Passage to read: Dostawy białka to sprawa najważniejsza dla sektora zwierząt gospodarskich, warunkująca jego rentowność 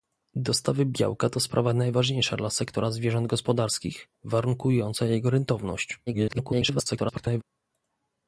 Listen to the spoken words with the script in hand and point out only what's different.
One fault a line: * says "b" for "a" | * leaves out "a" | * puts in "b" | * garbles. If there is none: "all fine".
* garbles